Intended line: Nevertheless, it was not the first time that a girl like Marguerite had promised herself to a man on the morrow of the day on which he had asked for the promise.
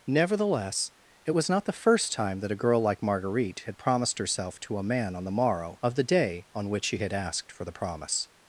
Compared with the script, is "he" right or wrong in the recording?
wrong